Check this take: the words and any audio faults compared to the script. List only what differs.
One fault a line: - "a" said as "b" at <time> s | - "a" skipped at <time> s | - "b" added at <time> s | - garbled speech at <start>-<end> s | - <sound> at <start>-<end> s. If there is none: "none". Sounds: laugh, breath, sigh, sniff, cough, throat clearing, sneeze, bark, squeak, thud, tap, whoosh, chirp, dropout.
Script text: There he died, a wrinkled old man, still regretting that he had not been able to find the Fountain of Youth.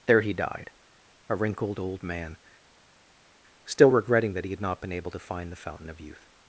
none